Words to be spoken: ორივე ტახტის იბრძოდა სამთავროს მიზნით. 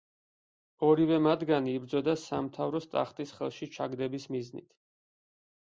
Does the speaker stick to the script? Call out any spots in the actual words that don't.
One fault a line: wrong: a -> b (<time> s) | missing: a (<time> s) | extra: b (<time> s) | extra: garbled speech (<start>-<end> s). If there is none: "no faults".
wrong: ტახტის -> მათგანი (1.2 s)
extra: ტახტის ხელში ჩაგდების (3.0 s)